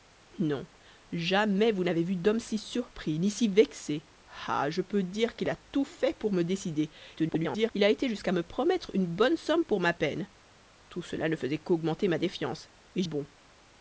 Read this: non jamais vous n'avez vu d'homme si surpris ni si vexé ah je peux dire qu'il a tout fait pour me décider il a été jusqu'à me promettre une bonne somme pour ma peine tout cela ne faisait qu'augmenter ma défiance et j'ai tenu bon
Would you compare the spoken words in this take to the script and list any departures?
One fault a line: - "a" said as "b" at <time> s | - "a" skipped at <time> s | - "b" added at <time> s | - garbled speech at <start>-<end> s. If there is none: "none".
- garbled speech at 7.2-7.7 s
- "j'ai tenu" skipped at 13.0 s